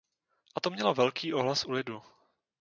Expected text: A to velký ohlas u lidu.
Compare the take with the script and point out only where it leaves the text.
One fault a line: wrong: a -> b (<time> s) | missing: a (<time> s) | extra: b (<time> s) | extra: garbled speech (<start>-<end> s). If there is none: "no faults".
extra: mělo (0.7 s)